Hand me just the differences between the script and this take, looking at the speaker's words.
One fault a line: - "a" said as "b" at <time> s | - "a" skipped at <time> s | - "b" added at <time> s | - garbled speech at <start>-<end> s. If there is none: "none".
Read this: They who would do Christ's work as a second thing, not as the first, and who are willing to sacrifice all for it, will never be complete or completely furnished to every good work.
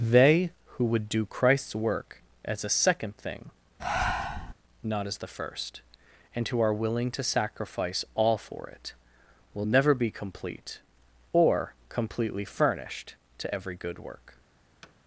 none